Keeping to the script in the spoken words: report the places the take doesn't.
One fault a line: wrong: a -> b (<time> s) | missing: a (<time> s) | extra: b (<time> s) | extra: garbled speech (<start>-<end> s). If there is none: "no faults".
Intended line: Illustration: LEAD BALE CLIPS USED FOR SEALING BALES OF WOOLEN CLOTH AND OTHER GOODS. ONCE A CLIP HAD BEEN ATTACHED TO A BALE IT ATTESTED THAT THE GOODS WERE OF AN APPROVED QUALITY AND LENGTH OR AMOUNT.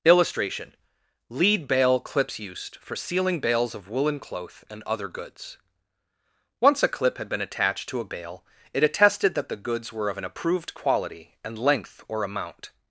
no faults